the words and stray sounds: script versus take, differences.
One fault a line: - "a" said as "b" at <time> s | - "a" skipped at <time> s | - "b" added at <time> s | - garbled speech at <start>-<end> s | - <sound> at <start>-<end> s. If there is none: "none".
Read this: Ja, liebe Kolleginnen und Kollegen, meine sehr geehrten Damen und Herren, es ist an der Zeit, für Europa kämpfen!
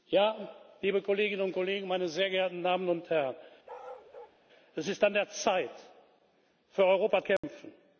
- bark at 3.7-4.4 s
- dropout at 7.4-7.4 s